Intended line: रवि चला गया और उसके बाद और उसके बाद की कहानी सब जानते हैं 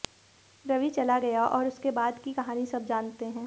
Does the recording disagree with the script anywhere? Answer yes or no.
yes